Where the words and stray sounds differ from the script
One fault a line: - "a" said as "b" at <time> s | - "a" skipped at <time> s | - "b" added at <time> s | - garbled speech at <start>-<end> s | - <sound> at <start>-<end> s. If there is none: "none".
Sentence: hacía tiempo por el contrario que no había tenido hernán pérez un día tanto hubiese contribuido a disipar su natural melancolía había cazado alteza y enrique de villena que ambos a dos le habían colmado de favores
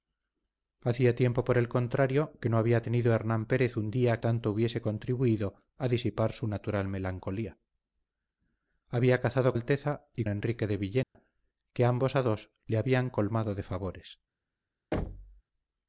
- dropout at 11.0-11.2 s
- thud at 14.9-15.4 s